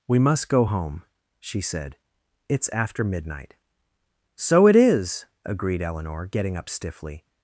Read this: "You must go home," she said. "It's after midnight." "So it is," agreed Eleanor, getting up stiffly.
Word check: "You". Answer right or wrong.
wrong